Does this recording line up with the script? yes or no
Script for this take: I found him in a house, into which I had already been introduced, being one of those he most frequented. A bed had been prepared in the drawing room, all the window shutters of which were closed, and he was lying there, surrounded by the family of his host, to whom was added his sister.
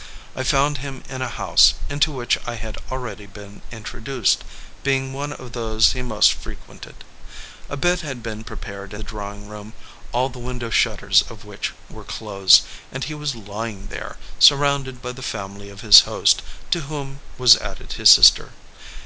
no